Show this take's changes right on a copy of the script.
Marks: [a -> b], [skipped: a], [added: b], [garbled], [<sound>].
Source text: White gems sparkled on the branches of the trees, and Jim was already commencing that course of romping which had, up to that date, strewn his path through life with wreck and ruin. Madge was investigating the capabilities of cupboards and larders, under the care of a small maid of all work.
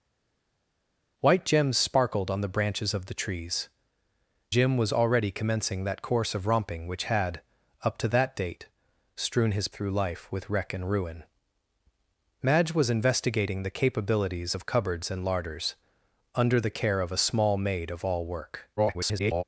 White gems sparkled on the branches of the trees, [skipped: and] Jim was already commencing that course of romping which had, up to that date, strewn his [skipped: path] through life with wreck and ruin. Madge was investigating the capabilities of cupboards and larders, under the care of a small maid of all work. [garbled]